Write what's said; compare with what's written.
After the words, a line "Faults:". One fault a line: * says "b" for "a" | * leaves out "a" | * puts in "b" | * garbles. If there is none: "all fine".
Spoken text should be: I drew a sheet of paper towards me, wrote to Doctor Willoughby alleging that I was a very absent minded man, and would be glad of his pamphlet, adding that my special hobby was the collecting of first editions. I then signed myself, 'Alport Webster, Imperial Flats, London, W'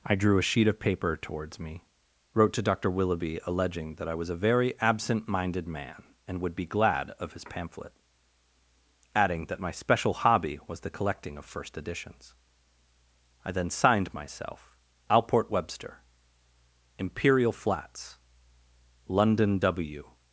I drew a sheet of paper towards me, wrote to Doctor Willoughby alleging that I was a very absent minded man, and would be glad of his pamphlet, adding that my special hobby was the collecting of first editions. I then signed myself, 'Alport Webster, Imperial Flats, London, W'
Faults:
all fine